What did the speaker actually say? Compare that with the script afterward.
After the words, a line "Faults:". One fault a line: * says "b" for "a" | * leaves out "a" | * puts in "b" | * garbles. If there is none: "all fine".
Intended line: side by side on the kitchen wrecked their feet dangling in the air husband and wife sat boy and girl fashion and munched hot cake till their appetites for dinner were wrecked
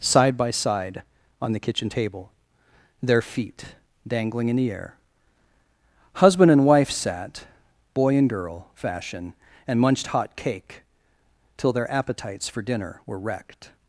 side by side on the kitchen table their feet dangling in the air husband and wife sat boy and girl fashion and munched hot cake till their appetites for dinner were wrecked
Faults:
* says "table" for "wrecked"